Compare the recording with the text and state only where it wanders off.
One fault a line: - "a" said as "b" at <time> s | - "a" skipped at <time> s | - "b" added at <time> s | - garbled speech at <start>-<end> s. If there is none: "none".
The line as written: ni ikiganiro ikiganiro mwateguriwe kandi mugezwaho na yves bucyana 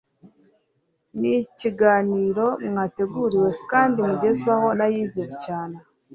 - "ikiganiro" skipped at 2.5 s